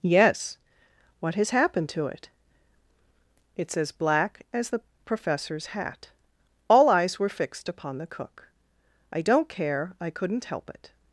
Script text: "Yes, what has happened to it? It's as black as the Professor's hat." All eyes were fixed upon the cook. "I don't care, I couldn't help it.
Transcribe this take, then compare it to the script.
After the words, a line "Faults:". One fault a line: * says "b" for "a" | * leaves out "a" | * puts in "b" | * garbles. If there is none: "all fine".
"Yes, what has happened to it? It's as black as the Professor's hat." All eyes were fixed upon the cook. "I don't care, I couldn't help it.
Faults:
all fine